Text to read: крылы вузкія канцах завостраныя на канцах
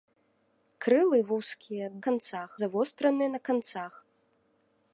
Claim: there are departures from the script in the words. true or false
false